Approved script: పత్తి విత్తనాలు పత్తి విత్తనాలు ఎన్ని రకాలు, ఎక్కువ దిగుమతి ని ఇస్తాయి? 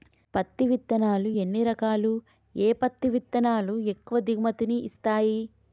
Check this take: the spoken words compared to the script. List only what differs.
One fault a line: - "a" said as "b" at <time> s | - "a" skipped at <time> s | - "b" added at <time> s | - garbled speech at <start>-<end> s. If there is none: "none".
- "ఎన్ని రకాలు ఏ" added at 1.4 s
- "ఎన్ని రకాలు" skipped at 3.8 s